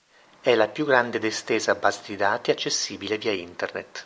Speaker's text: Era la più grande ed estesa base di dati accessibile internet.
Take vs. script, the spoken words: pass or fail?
fail